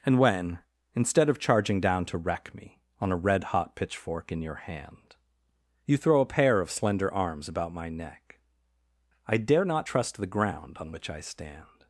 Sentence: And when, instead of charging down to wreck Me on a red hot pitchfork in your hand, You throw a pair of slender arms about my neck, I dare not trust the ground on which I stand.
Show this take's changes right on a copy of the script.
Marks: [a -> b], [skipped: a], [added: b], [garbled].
And when, instead of charging down to wreck Me on a red hot pitchfork in your hand, You throw a pair of slender arms about my neck, I dare not trust the ground on which I stand.